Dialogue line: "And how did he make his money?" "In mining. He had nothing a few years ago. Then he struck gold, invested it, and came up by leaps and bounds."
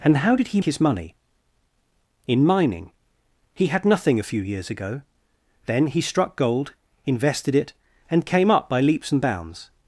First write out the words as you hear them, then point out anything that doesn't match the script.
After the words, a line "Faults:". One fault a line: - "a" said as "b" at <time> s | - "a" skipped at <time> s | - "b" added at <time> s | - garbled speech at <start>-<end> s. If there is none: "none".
"And how did he his money?" "In mining. He had nothing a few years ago. Then he struck gold, invested it, and came up by leaps and bounds."
Faults:
- "make" skipped at 0.6 s